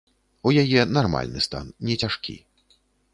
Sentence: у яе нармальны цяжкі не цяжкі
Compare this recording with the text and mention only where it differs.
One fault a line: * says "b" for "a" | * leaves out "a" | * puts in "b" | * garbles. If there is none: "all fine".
* says "стан" for "цяжкі"